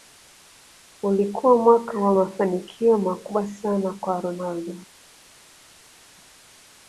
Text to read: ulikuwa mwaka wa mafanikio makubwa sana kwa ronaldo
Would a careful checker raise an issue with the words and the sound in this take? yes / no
no